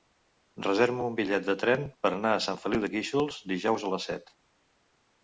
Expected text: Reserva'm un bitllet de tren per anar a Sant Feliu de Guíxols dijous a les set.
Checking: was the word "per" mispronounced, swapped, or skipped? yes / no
no